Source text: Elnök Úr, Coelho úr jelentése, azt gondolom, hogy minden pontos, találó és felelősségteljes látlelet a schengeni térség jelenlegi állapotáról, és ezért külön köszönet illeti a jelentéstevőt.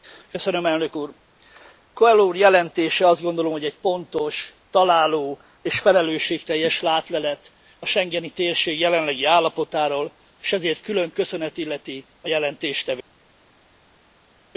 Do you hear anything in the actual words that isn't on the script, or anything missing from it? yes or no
yes